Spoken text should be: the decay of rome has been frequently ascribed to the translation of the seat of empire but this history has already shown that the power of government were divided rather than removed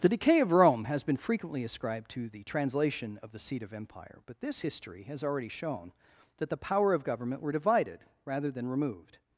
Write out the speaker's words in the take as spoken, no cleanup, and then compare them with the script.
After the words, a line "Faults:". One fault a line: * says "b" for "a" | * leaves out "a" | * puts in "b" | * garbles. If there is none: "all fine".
the decay of rome has been frequently ascribed to the translation of the seat of empire but this history has already shown that the power of government were divided rather than removed
Faults:
all fine